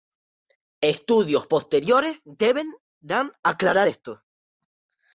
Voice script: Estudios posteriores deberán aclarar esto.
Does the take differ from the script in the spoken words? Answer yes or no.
no